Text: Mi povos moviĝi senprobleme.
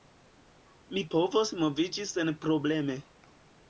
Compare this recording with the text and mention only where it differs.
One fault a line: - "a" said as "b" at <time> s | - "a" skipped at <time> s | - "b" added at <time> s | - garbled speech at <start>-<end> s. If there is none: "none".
none